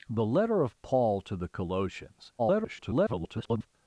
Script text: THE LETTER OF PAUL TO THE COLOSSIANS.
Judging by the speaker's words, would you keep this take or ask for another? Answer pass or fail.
fail